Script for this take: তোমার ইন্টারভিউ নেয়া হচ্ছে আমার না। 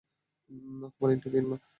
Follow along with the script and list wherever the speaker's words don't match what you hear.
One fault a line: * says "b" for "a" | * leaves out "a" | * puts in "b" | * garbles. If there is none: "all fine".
* leaves out "নেয়া হচ্ছে আমার"